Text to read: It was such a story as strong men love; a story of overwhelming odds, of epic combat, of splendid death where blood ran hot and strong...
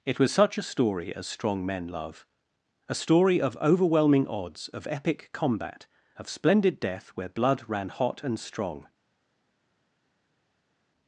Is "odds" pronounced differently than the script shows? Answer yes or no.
no